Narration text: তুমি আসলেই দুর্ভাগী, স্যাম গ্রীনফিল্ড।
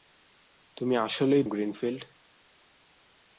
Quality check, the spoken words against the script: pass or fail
fail